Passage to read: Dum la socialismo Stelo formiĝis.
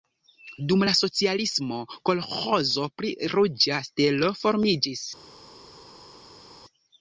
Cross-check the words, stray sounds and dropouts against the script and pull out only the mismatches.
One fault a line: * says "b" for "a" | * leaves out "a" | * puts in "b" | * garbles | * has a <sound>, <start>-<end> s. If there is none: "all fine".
* puts in "kolĥozo pri Ruĝa"